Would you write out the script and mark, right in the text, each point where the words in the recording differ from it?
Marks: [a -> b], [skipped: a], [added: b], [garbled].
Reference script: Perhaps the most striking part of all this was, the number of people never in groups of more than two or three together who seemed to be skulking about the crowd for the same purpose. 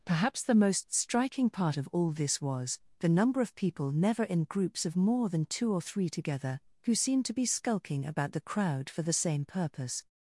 Perhaps the most striking part of all this was, the number of people never in groups of more than two or three together who seemed to be skulking about the crowd for the same purpose.